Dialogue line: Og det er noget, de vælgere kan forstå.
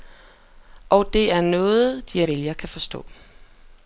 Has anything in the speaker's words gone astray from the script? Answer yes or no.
no